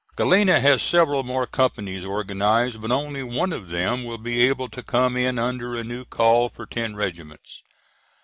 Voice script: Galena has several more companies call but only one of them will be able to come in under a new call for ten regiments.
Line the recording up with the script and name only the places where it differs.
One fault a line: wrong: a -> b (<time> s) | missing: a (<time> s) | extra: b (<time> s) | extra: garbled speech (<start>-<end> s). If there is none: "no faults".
wrong: call -> organized (2.0 s)